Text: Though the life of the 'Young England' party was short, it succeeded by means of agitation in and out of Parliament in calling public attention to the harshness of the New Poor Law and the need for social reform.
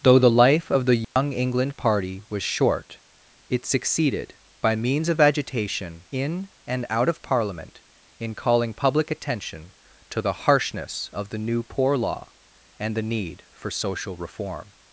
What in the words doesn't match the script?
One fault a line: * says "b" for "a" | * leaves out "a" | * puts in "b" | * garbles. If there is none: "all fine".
all fine